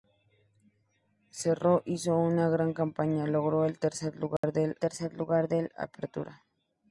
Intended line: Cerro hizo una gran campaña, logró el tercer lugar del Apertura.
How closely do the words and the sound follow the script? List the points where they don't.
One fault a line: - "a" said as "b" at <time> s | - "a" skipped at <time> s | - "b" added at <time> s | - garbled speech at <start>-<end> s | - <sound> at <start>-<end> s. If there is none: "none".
- dropout at 4.4-4.4 s
- "tercer lugar del" added at 4.8 s